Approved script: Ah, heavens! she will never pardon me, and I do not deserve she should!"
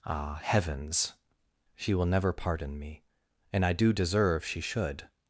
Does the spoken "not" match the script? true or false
false